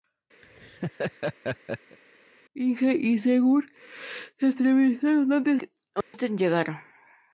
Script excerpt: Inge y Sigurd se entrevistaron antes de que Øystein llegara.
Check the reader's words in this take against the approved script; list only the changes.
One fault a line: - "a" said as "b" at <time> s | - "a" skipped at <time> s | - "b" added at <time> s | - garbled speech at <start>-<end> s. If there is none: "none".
- "de" skipped at 5.6 s